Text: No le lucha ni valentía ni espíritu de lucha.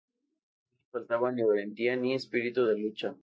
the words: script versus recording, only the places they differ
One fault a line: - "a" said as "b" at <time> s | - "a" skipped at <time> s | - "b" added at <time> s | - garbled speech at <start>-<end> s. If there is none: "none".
- "lucha" said as "faltaba" at 0.9 s